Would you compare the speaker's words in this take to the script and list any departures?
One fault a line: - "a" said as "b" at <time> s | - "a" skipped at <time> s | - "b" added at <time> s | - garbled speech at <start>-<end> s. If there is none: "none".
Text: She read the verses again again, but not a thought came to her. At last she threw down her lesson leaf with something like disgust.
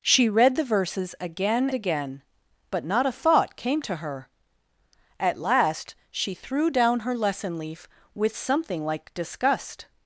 none